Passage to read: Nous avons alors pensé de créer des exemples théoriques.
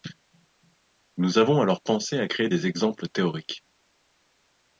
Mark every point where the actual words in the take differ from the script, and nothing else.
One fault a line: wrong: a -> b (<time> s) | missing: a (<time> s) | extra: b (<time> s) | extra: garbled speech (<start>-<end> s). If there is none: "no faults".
wrong: de -> à (2.2 s)